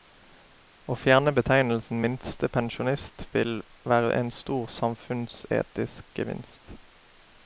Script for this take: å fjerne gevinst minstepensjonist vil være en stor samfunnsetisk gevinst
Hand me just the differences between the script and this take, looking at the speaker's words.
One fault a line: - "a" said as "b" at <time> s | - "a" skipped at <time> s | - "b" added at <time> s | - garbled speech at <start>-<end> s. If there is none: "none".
- "gevinst" said as "betegnelsen" at 1.4 s